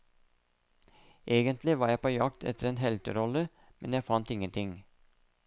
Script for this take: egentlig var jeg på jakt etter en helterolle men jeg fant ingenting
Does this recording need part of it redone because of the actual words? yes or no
no